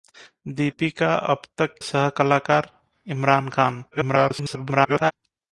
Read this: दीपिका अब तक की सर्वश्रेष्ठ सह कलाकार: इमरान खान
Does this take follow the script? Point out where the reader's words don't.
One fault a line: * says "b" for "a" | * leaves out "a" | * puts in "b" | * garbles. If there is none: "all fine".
* leaves out "की सर्वश्रेष्ठ"
* garbles